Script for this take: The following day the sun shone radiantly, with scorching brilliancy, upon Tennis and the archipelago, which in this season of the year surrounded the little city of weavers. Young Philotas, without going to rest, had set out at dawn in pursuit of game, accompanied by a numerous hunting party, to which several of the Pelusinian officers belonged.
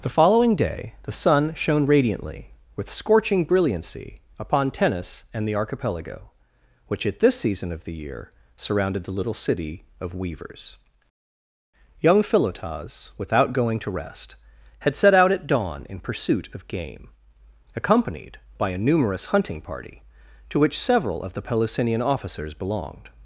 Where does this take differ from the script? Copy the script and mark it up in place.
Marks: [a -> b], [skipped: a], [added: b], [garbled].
The following day the sun shone radiantly, with scorching brilliancy, upon Tennis and the archipelago, which [in -> at] this season of the year surrounded the little city of weavers. Young Philotas, without going to rest, had set out at dawn in pursuit of game, accompanied by a numerous hunting party, to which several of the Pelusinian officers belonged.